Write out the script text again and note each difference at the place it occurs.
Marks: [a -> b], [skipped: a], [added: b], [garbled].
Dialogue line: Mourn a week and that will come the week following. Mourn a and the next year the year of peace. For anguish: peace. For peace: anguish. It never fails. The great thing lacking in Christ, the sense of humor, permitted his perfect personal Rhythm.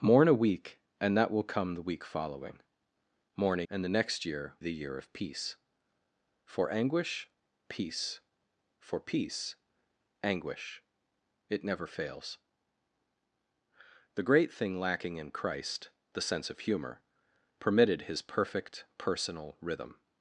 Mourn a week and that will come the week following. Mourn a and the next year the year of peace. For anguish: peace. For peace: anguish. It never fails. The great thing lacking in Christ, the sense of humor, permitted his perfect personal Rhythm.